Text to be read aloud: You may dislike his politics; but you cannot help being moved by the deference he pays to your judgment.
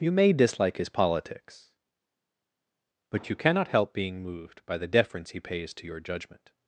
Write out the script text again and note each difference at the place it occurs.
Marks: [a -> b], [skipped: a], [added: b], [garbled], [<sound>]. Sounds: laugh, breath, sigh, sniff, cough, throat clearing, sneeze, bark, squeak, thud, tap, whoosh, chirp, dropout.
You may dislike his politics; but you cannot help being moved by the deference he pays to your judgment.